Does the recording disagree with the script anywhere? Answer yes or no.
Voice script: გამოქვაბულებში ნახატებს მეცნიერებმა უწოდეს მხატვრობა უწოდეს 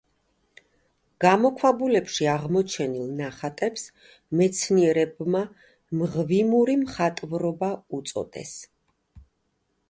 yes